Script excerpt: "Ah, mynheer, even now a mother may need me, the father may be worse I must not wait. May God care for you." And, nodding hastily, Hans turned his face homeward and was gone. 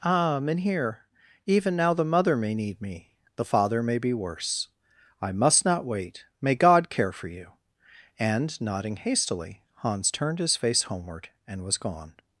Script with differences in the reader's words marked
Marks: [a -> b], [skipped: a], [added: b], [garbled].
"Ah, mynheer, even now [a -> the] mother may need me, the father may be worse I must not wait. May God care for you." And, nodding hastily, Hans turned his face homeward and was gone.